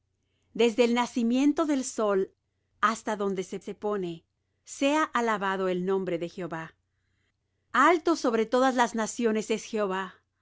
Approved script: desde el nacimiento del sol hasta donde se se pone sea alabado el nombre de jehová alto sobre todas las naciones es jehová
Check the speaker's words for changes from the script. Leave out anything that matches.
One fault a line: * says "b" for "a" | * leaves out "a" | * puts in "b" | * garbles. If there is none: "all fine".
all fine